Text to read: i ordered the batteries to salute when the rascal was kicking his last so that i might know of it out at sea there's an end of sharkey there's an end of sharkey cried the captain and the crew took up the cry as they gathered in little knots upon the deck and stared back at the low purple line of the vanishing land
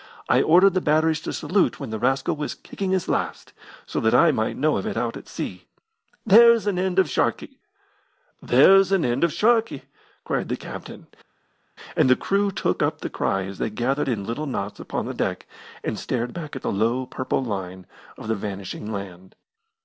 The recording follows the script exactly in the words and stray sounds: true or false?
true